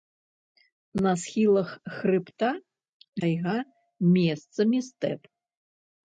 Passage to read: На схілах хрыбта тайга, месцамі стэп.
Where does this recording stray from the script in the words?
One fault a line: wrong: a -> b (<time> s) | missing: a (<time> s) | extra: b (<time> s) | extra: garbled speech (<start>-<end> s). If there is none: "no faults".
no faults